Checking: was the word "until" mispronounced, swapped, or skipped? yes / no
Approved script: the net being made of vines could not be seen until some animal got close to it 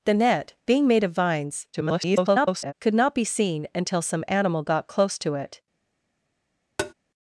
no